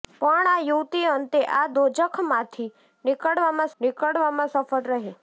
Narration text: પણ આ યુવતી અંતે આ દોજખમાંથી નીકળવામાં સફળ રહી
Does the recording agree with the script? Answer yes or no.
no